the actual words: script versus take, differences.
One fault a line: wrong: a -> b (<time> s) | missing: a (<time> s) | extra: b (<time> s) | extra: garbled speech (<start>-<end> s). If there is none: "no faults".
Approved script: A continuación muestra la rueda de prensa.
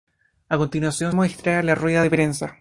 no faults